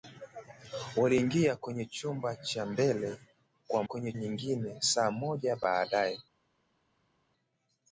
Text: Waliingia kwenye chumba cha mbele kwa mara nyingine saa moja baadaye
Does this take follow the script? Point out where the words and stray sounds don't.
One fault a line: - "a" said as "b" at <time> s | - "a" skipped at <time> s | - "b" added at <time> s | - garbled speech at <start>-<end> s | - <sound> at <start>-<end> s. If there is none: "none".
- "mara" said as "kwenye" at 3.8 s